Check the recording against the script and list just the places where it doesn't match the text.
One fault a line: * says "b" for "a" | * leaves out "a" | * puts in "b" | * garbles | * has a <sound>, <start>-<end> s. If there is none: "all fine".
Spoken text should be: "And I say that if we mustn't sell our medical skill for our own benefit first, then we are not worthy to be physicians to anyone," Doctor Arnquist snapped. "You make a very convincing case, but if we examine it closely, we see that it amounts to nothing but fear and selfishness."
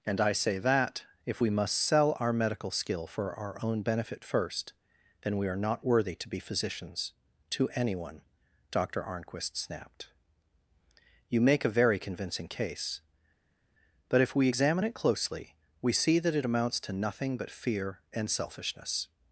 * says "must" for "mustn't"